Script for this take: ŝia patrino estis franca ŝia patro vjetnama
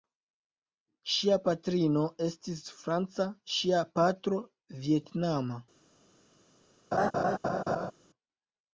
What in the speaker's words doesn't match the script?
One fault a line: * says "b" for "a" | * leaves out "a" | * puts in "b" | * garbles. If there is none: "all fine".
all fine